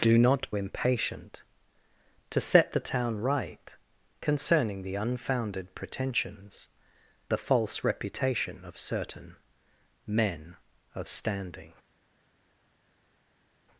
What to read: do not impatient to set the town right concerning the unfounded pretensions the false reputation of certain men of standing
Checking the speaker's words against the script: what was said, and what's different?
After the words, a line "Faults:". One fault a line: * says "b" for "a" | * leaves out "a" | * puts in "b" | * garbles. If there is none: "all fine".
do not impatient to set the town right concerning the unfounded pretensions the false reputation of certain men of standing
Faults:
all fine